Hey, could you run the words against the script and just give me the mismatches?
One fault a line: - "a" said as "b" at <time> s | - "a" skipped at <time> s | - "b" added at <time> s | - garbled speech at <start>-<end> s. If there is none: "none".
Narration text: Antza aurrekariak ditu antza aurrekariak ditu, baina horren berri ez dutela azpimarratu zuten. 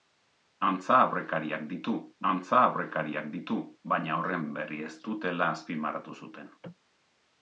none